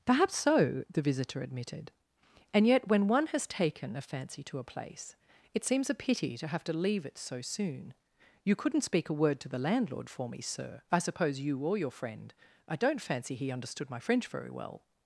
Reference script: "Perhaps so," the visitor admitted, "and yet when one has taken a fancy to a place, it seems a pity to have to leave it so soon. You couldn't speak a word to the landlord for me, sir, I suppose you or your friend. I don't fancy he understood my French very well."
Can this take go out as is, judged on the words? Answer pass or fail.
pass